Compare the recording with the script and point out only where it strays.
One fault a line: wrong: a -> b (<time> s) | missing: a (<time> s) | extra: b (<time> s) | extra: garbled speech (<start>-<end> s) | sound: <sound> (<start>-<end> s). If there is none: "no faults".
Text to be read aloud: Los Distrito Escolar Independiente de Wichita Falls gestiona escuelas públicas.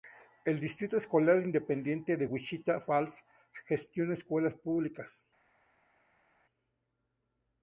wrong: Los -> El (0.5 s)